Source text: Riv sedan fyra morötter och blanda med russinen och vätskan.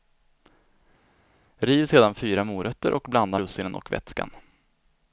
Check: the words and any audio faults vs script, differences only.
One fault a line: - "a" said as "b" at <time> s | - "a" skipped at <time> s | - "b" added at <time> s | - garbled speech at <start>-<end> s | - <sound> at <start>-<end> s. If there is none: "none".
- "med" skipped at 3.4 s